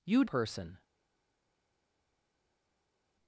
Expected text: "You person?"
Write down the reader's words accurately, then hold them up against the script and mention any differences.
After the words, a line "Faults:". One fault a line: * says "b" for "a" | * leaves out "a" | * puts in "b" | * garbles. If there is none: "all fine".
"You person?"
Faults:
all fine